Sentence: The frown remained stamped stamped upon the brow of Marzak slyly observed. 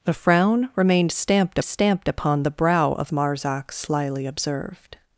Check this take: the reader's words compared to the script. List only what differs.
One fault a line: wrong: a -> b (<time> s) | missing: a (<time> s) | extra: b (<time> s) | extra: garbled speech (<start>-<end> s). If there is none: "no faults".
no faults